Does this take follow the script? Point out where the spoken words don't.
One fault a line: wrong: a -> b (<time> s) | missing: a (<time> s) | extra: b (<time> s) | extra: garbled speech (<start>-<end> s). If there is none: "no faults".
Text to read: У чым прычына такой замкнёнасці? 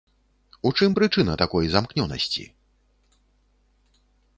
no faults